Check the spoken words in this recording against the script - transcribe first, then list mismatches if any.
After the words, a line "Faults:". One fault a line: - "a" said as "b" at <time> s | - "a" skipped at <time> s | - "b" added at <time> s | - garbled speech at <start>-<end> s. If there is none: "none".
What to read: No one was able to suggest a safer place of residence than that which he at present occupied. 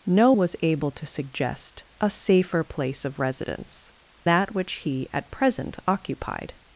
No was able to suggest a safer place of residence that which he at present occupied.
Faults:
- "one" skipped at 0.3 s
- "than" skipped at 3.9 s